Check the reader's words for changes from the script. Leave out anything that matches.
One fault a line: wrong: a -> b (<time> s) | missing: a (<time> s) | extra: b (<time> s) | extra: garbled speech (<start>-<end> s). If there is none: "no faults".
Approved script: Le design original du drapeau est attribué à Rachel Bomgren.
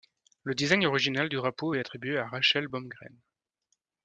no faults